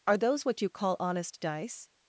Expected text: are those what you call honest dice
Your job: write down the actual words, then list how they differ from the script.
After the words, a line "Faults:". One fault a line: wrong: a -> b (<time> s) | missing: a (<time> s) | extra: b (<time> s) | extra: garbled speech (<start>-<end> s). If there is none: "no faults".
are those what you call honest dice
Faults:
no faults